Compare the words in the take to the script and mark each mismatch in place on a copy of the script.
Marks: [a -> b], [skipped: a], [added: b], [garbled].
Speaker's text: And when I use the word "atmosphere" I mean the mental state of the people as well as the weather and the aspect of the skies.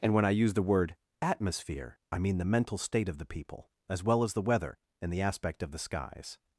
And when I use the word "atmosphere" I mean the mental state of the people as well as the weather and the aspect of the skies.